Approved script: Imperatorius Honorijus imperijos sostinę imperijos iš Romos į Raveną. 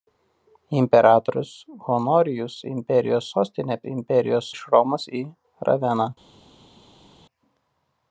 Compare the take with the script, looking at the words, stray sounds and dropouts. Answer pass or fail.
pass